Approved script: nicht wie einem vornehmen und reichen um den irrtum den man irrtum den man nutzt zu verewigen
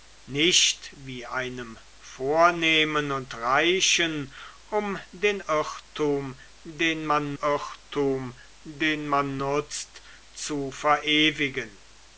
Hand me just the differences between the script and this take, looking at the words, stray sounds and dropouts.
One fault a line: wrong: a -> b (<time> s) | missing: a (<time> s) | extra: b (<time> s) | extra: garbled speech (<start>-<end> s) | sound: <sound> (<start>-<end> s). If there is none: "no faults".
no faults